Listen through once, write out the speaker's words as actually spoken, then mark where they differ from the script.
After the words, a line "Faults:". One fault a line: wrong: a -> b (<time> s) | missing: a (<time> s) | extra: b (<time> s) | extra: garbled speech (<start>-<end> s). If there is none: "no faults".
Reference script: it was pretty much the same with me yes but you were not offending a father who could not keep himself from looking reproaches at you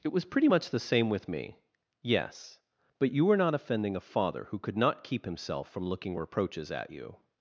it was pretty much the same with me yes but you were not offending a father who could not keep himself from looking reproaches at you
Faults:
no faults